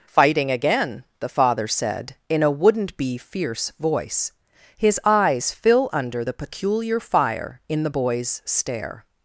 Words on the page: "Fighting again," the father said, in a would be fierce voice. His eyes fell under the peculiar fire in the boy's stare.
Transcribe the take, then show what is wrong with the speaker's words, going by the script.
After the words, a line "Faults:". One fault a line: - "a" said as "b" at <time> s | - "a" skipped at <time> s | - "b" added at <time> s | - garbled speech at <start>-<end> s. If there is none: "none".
"Fighting again," the father said, in a wouldn't be fierce voice. His eyes fill under the peculiar fire in the boy's stare.
Faults:
- "would" said as "wouldn't" at 2.5 s
- "fell" said as "fill" at 5.5 s